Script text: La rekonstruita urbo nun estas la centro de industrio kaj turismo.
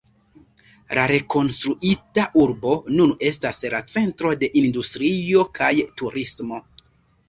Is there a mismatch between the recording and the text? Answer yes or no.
no